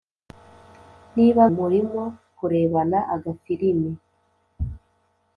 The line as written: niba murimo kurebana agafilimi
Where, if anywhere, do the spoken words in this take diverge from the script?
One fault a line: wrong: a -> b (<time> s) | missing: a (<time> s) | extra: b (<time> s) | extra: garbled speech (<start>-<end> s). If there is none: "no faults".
no faults